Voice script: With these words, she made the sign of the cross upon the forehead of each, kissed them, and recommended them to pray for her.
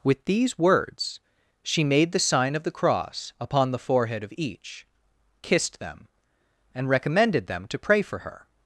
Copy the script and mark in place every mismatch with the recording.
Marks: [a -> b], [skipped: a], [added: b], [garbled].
With these words, she made the sign of the cross upon the forehead of each, kissed them, and recommended them to pray for her.